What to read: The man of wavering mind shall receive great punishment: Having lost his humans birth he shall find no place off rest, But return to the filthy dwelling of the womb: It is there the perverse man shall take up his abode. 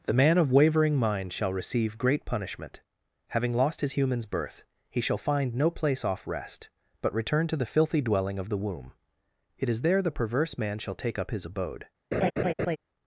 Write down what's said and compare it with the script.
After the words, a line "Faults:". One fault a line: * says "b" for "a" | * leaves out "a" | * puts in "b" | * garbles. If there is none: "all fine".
The man of wavering mind shall receive great punishment: Having lost his humans birth he shall find no place off rest, But return to the filthy dwelling of the womb: It is there the perverse man shall take up his abode.
Faults:
all fine